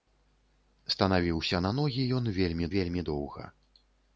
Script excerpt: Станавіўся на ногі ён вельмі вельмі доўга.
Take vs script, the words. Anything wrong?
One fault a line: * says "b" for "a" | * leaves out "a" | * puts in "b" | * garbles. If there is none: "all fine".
all fine